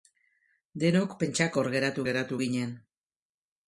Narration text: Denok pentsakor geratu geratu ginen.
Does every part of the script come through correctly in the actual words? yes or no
yes